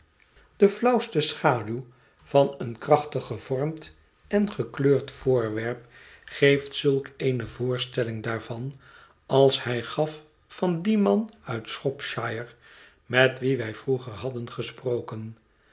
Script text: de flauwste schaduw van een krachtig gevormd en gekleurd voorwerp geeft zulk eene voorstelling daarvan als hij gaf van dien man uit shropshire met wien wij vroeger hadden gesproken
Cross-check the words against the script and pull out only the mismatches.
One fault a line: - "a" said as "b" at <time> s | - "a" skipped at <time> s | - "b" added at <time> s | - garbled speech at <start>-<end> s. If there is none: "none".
none